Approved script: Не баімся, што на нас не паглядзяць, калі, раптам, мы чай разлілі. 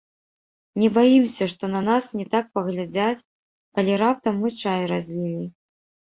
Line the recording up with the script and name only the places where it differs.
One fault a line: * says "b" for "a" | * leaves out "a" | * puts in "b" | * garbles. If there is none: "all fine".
* puts in "так"